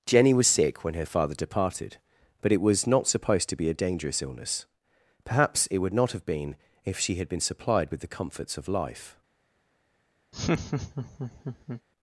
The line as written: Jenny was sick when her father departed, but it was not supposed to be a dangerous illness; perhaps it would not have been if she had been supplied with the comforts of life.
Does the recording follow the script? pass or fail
pass